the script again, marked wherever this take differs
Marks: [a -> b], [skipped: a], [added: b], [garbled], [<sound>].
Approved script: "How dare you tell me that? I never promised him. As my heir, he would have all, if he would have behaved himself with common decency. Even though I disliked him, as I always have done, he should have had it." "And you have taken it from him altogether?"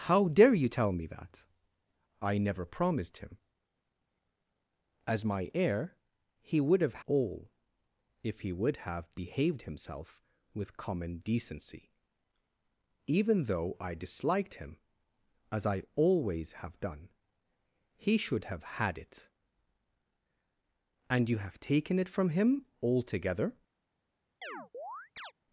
"How dare you tell me that? I never promised him. As my heir, he would have all, if he would have behaved himself with common decency. Even though I disliked him, as I always have done, he should have had it." "And you have taken it from him altogether?" [chirp]